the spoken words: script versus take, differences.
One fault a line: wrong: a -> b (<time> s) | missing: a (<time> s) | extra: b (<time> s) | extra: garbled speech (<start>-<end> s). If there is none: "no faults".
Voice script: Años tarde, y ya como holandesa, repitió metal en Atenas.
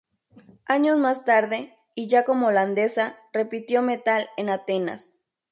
extra: más (1.0 s)